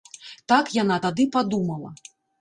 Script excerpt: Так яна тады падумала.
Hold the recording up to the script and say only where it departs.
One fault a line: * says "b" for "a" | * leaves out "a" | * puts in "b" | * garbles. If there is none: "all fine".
all fine